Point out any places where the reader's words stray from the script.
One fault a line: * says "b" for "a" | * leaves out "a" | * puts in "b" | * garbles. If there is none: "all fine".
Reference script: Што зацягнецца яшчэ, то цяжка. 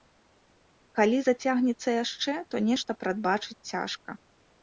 * says "Калі" for "Што"
* puts in "нешта прадбачыць"